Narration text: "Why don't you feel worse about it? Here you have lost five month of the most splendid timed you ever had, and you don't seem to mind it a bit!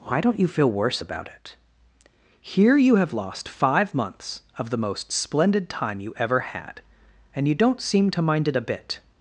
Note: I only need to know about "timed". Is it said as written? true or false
false